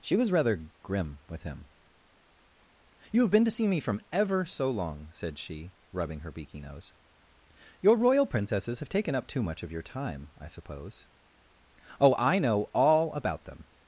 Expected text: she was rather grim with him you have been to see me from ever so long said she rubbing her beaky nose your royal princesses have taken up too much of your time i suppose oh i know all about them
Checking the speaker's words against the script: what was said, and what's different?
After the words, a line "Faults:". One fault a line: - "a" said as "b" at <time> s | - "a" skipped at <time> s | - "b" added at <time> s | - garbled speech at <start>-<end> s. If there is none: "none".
she was rather grim with him you have been to see me from ever so long said she rubbing her beaky nose your royal princesses have taken up too much of your time i suppose oh i know all about them
Faults:
none